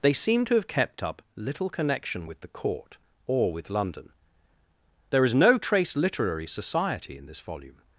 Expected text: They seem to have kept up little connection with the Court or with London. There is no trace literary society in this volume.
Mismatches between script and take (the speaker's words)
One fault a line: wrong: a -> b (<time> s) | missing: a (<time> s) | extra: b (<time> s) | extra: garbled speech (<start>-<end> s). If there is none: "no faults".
no faults